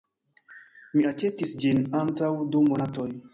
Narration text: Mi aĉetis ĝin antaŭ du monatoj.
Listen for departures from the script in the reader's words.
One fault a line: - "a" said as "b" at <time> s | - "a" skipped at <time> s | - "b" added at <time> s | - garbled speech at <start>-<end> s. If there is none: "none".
none